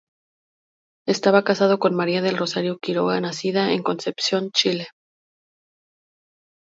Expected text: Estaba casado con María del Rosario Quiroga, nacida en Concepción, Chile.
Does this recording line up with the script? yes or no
yes